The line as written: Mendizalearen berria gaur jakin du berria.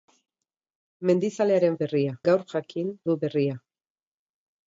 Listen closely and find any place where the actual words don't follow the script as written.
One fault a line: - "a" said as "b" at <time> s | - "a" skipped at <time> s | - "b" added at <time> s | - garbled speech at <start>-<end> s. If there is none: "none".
none